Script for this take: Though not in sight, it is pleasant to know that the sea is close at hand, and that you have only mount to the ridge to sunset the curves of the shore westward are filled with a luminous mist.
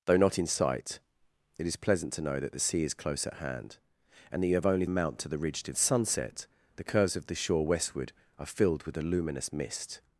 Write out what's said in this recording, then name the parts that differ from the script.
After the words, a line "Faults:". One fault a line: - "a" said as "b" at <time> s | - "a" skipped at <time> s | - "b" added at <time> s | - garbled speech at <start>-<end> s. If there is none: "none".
Though not in sight, it is pleasant to know that the sea is close at hand, and that you have only mount to the ridge to sunset the curves of the shore westward are filled with a luminous mist.
Faults:
none